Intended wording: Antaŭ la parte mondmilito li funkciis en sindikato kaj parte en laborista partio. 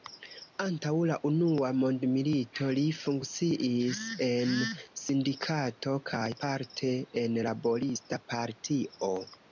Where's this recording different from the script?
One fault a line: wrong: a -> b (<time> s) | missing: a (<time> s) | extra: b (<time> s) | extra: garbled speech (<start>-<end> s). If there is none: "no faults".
wrong: parte -> unua (1.3 s)